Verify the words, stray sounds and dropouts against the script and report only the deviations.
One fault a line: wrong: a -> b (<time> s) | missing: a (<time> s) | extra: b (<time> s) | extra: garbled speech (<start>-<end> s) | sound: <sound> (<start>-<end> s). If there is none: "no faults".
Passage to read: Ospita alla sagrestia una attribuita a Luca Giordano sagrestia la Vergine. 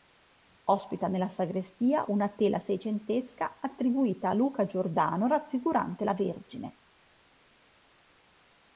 wrong: alla -> nella (1.1 s)
extra: tela seicentesca (2.3 s)
wrong: sagrestia -> raffigurante (5.3 s)